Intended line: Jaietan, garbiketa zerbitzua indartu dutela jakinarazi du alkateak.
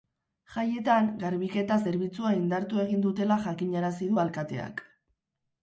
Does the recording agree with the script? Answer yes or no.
no